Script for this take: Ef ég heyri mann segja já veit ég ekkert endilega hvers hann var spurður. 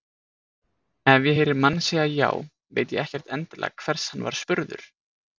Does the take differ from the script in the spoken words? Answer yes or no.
no